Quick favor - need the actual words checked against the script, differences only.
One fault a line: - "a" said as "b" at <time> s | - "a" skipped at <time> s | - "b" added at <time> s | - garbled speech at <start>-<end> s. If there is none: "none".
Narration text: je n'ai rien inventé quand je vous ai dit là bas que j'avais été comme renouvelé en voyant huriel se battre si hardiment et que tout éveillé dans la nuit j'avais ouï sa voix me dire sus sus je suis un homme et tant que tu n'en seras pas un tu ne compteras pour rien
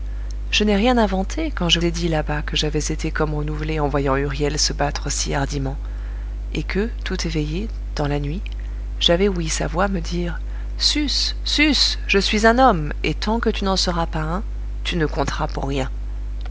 - "vous" skipped at 1.8 s